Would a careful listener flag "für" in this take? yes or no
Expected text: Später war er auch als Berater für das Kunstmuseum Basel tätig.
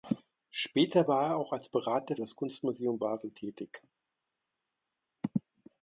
yes